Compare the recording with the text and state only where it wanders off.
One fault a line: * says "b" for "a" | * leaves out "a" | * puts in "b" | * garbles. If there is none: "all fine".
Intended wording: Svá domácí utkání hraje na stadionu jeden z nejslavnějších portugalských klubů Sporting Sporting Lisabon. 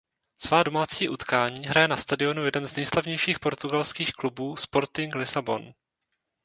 * leaves out "Sporting"